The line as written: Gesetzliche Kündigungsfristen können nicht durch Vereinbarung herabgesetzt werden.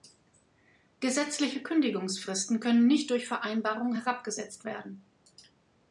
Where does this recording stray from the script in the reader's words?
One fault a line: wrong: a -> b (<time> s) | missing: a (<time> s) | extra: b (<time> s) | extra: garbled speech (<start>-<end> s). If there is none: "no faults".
no faults